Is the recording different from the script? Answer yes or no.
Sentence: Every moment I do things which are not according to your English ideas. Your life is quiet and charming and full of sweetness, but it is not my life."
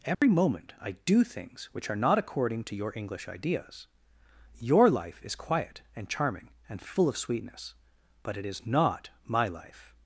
no